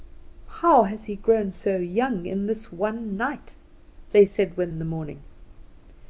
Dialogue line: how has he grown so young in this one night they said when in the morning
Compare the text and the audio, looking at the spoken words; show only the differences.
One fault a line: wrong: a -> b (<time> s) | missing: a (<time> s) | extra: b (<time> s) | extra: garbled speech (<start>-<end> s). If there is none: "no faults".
no faults